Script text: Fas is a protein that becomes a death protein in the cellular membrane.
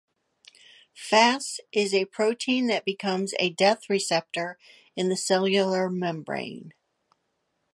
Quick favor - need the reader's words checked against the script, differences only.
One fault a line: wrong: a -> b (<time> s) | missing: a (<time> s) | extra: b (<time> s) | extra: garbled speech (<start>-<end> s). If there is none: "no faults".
wrong: protein -> receptor (3.9 s)